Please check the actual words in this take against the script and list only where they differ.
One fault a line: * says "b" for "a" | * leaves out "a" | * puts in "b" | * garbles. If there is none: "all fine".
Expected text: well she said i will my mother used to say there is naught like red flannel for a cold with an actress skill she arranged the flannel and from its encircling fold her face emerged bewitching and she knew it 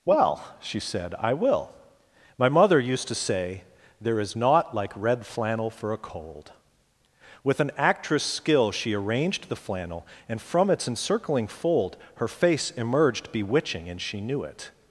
all fine